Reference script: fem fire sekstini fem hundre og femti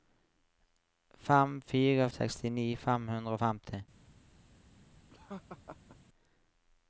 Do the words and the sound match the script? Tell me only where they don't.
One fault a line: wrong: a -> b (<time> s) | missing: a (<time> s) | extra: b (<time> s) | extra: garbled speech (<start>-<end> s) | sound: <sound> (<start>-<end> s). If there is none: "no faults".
sound: laugh (5.1-6.0 s)